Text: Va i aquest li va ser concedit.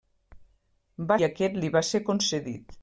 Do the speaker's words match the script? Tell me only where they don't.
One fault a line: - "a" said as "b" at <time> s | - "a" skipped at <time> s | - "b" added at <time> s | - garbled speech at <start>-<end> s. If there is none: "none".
none